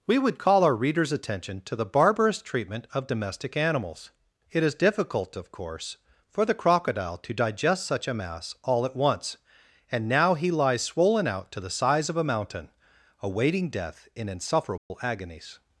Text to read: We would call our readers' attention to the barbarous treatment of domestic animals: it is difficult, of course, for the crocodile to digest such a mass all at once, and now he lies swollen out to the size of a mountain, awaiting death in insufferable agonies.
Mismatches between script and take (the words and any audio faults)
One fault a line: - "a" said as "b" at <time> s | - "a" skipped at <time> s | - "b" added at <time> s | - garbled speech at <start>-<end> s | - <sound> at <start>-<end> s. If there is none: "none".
- dropout at 14.8-14.9 s